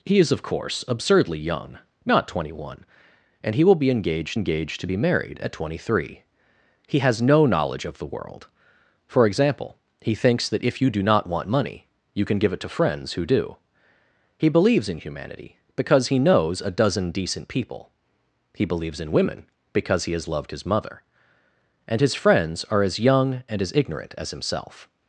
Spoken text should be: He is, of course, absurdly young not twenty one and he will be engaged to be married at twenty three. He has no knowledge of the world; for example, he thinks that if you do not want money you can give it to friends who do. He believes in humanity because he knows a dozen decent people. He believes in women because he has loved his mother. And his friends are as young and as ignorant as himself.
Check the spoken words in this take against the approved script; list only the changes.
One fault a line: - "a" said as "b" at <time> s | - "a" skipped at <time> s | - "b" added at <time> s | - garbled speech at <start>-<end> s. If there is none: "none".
- "engaged" added at 4.3 s